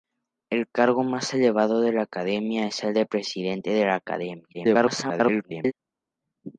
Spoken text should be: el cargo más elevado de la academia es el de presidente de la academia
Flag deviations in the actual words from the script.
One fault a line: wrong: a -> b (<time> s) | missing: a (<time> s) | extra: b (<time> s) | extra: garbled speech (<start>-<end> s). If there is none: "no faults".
extra: garbled speech (4.5-5.7 s)